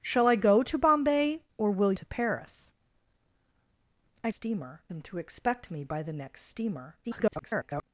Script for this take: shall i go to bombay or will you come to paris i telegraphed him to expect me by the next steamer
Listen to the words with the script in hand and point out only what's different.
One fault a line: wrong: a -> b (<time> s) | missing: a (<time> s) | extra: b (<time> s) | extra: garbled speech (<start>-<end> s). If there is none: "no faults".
missing: you come (1.9 s)
wrong: telegraphed -> steamer (4.3 s)
extra: garbled speech (7.0-7.8 s)